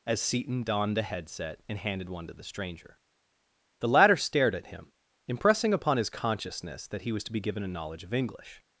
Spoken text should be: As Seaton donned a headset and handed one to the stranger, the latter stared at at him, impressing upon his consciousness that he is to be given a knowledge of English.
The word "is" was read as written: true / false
false